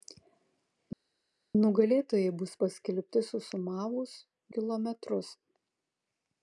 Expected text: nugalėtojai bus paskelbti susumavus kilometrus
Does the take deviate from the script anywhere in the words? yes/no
no